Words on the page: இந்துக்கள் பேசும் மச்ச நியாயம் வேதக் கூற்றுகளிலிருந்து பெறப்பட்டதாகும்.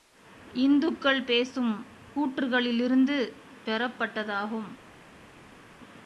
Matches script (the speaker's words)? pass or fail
fail